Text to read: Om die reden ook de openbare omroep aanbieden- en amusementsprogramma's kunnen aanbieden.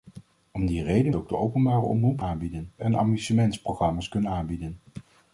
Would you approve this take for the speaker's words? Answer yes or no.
yes